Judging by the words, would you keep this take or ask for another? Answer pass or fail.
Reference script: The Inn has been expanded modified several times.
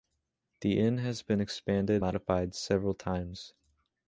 pass